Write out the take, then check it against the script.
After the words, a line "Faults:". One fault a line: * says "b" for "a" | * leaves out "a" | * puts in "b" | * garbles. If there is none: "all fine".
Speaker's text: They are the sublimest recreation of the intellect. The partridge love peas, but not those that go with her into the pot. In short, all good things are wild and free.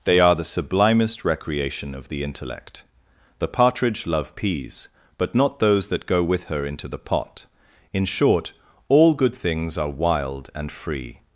They are the sublimest recreation of the intellect. The partridge love peas, but not those that go with her into the pot. In short, all good things are wild and free.
Faults:
all fine